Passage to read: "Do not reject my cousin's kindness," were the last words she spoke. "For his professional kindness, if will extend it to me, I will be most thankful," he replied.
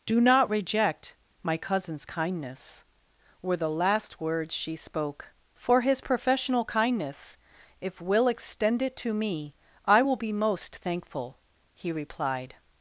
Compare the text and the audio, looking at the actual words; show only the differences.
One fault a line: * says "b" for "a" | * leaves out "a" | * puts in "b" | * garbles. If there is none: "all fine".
all fine